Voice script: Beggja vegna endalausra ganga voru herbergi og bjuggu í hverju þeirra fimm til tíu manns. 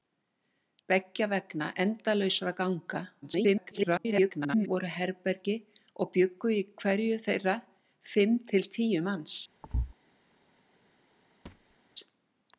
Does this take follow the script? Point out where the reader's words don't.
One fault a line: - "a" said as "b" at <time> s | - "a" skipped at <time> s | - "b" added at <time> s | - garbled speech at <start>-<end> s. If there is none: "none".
- garbled speech at 3.2-4.7 s